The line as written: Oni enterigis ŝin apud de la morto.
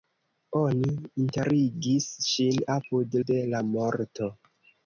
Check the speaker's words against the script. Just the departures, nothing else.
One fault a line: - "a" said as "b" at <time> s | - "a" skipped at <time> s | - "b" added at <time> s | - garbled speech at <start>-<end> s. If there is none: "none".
none